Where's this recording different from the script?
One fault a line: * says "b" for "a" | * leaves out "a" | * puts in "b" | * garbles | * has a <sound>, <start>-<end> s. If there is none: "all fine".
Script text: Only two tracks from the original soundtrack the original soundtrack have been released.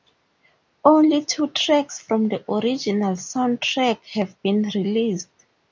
* leaves out "the original soundtrack"